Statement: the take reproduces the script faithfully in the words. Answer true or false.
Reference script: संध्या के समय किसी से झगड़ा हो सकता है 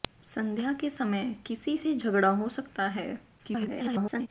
false